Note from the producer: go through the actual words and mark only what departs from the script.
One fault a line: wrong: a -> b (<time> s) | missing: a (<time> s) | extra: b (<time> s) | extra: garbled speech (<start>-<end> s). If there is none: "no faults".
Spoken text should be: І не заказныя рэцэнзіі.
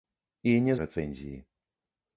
missing: заказныя (0.8 s)